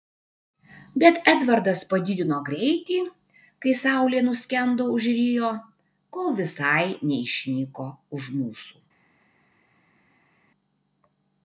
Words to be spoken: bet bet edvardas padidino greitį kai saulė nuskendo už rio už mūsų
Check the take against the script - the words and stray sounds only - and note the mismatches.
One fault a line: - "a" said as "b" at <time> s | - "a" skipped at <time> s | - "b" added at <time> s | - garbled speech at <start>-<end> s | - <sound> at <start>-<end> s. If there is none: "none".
- "bet" skipped at 1.2 s
- "kol visai neišnyko" added at 6.2 s